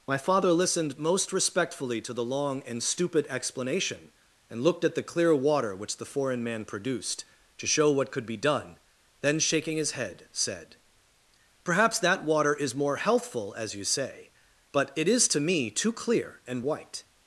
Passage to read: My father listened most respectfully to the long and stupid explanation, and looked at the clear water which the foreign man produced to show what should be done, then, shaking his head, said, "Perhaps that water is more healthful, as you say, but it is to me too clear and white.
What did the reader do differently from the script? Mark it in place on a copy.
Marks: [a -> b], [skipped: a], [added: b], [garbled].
My father listened most respectfully to the long and stupid explanation, and looked at the clear water which the foreign man produced to show what [should -> could] be done, then, shaking his head, said, "Perhaps that water is more healthful, as you say, but it is to me too clear and white.